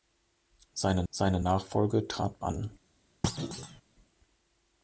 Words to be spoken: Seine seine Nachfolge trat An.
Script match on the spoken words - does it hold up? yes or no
yes